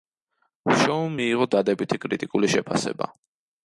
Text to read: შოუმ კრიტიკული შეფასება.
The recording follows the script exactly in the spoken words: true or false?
false